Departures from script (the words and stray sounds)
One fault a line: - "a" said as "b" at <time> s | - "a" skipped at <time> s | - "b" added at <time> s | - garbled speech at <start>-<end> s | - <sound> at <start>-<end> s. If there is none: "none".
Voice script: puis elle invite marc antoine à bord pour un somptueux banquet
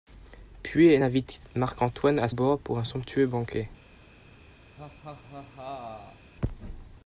- laugh at 4.8-6.3 s